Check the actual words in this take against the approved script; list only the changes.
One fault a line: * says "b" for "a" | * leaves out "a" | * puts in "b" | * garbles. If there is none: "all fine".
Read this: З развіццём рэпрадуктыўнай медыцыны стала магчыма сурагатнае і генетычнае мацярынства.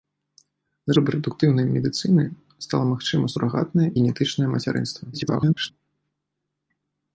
* leaves out "развіццём"
* leaves out "і"
* garbles